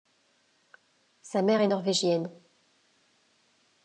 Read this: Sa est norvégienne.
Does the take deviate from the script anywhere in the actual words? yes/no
yes